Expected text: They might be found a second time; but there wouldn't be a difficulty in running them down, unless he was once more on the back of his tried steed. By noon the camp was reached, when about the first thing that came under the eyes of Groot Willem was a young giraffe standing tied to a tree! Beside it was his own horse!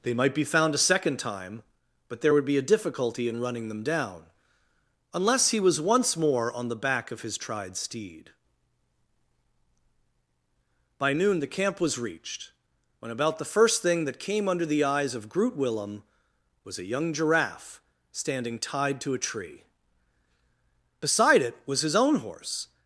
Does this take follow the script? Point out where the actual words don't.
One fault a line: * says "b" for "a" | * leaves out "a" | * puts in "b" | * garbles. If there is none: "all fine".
* says "would" for "wouldn't"